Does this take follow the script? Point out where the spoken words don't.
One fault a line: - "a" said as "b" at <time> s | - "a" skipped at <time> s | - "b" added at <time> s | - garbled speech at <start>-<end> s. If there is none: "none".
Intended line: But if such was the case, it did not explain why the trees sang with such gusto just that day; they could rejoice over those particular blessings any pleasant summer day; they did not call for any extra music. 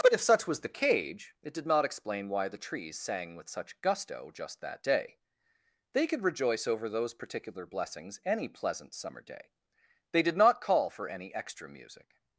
- "case" said as "cage" at 0.7 s